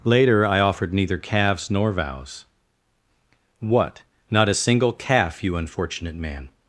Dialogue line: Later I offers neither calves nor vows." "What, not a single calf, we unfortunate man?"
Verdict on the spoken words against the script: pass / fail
fail